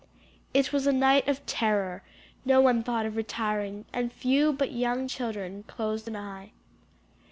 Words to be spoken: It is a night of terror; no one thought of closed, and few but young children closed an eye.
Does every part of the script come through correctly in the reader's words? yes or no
no